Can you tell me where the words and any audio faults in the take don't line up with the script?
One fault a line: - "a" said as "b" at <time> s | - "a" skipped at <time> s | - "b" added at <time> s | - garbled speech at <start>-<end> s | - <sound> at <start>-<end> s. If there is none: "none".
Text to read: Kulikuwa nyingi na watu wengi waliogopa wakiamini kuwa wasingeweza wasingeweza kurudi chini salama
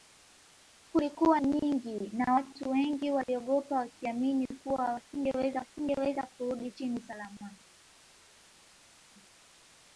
none